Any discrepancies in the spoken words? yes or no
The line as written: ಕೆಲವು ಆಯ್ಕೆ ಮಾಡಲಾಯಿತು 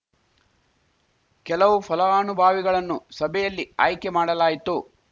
yes